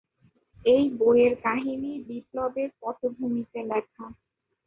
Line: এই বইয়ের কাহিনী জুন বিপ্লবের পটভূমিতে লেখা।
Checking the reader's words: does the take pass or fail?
fail